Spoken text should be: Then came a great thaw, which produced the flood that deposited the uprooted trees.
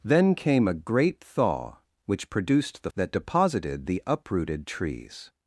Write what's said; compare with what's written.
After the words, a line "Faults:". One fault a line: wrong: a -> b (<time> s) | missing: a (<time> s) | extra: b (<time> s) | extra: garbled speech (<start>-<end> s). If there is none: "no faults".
Then came a great thaw, which produced the that deposited the uprooted trees.
Faults:
missing: flood (2.9 s)